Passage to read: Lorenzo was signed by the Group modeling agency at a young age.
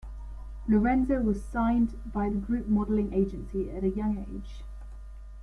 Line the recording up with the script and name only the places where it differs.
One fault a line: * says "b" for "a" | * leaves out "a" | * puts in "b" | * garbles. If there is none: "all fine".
all fine